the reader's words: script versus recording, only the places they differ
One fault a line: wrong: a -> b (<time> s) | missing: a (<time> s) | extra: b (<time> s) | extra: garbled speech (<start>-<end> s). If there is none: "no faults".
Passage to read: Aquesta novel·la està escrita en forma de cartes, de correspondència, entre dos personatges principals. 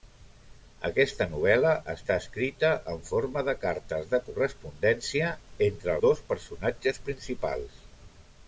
no faults